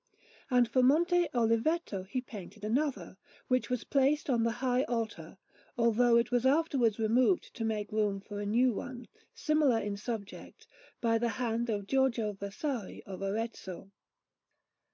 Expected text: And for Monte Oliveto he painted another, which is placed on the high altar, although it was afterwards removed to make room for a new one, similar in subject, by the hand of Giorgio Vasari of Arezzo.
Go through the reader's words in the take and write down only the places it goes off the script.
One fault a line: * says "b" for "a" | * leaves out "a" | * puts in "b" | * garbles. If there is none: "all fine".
* says "was" for "is"